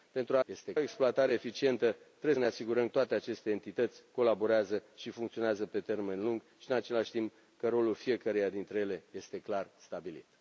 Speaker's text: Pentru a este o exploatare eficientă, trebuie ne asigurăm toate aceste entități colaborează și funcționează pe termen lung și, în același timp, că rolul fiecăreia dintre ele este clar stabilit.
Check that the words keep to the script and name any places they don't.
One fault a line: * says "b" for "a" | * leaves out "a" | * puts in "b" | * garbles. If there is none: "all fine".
all fine